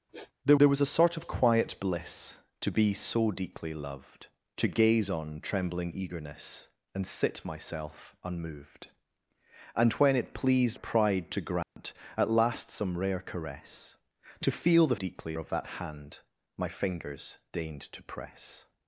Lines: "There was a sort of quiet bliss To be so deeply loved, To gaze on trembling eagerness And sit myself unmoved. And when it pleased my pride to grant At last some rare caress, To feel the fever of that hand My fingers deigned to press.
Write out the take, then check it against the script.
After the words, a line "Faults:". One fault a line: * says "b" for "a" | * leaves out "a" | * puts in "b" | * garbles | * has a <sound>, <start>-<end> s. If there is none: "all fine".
"There there was a sort of quiet bliss To be so deeply loved, To gaze on trembling eagerness And sit myself unmoved. And when it pleased pride to grant At last some rare caress, To feel the deeply of that hand My fingers deigned to press.
Faults:
* has a sniff, 0.1-0.3 s
* puts in "there"
* leaves out "my"
* has a dropout, 11.6-11.8 s
* says "deeply" for "fever"